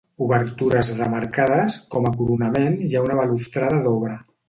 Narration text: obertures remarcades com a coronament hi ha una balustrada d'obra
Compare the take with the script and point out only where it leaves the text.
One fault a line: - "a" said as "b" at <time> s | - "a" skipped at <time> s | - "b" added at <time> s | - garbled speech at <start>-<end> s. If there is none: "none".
none